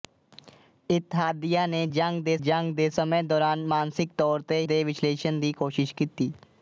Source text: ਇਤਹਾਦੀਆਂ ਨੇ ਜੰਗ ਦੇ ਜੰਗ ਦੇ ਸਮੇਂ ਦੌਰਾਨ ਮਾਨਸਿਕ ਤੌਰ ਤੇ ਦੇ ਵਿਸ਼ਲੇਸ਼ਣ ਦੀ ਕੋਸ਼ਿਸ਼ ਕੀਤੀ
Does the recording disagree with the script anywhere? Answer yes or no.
no